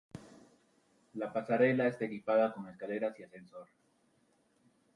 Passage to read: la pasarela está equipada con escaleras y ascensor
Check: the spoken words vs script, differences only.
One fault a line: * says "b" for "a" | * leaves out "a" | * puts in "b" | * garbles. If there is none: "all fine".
all fine